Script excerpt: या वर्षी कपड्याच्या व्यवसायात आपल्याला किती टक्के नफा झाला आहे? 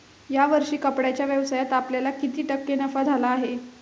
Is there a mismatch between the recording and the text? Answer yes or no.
no